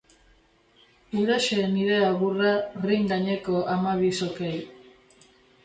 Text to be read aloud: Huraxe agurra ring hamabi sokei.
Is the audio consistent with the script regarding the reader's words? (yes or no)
no